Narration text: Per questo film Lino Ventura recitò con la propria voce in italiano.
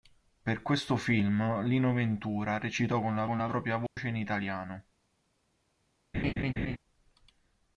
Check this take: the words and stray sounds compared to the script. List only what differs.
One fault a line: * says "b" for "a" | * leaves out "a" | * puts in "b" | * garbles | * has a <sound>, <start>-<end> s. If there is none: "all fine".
* puts in "con la"
* has a dropout, 3.9-4.0 s
* has a laugh, 6.1-6.8 s